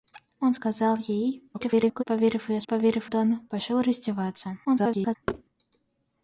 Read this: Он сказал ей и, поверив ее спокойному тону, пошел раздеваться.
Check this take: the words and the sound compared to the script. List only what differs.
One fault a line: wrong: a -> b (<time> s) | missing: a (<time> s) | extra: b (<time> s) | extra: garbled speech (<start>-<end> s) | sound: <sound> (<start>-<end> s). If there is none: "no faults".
extra: garbled speech (1.5-2.0 s)
wrong: спокойному -> поверив (2.7 s)
extra: garbled speech (4.6-5.2 s)
sound: thud (5.3-5.4 s)